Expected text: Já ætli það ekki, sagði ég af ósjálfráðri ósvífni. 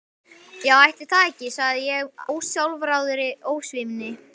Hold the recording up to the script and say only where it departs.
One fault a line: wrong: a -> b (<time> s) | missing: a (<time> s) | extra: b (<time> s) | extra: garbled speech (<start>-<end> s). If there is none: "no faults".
missing: af (2.2 s)